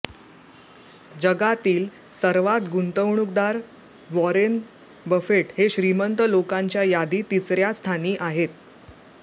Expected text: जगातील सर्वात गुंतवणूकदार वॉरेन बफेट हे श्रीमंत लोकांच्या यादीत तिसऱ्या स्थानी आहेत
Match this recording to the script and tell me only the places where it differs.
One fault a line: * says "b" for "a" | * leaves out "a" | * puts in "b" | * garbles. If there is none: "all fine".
all fine